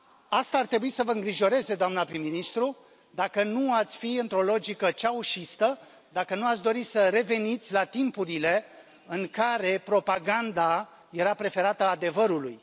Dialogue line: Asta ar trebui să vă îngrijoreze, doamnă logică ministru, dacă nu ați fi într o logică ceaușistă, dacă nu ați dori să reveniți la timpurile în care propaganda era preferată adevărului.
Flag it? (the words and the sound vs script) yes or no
yes